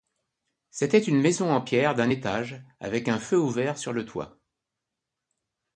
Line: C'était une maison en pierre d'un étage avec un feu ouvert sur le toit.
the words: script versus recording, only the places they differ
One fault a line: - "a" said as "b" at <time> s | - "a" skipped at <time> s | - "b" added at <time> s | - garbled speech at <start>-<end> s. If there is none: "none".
none